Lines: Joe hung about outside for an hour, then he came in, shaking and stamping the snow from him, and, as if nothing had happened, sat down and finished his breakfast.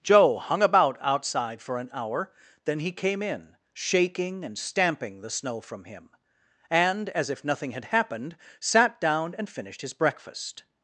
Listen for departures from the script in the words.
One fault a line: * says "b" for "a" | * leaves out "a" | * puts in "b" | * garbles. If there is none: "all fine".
all fine